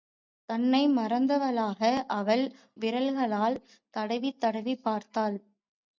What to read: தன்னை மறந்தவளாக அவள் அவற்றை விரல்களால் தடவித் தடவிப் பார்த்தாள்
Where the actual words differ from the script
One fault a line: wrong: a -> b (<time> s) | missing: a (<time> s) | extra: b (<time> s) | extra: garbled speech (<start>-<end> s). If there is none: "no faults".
missing: அவற்றை (2.4 s)